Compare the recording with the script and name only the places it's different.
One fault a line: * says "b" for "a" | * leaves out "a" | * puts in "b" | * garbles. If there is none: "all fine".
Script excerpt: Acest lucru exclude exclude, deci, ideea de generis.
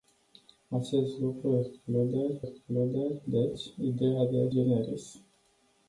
all fine